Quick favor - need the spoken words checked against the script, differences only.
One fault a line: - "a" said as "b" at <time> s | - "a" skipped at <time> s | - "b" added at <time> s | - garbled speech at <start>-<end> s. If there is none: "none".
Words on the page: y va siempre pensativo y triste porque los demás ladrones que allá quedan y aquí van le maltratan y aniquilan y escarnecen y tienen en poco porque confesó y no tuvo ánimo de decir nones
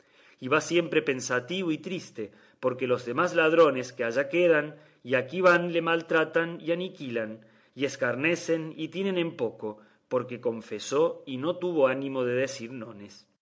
none